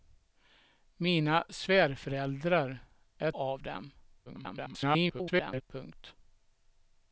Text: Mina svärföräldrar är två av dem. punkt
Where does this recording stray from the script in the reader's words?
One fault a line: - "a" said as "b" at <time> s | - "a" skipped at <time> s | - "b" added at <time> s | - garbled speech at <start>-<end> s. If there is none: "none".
- "två" skipped at 3.3 s
- garbled speech at 4.3-5.6 s